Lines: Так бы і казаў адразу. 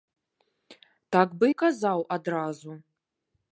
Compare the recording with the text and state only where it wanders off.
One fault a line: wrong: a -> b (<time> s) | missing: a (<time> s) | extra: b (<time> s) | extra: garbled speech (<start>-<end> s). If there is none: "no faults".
no faults